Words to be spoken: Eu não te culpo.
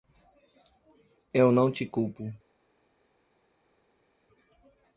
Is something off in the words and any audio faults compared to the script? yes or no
no